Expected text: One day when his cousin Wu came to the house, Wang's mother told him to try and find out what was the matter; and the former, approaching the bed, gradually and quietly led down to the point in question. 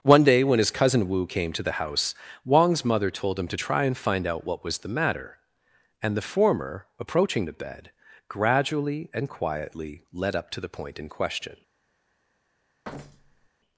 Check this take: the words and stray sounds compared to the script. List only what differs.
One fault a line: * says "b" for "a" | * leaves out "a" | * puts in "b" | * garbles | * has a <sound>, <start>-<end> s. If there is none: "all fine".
* says "up" for "down"
* has a thud, 12.8-13.5 s